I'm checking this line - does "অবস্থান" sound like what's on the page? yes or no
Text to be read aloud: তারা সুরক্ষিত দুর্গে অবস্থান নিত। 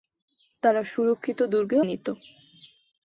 no